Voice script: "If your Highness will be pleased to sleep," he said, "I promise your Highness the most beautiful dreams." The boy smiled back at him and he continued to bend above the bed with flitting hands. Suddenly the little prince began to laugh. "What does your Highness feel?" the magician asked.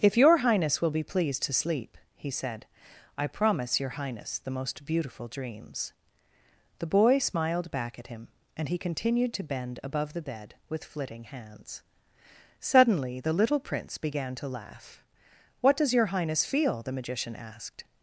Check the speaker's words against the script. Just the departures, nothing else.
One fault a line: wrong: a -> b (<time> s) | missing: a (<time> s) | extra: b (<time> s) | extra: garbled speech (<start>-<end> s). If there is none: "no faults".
no faults